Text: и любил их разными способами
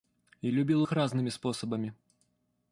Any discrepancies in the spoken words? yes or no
no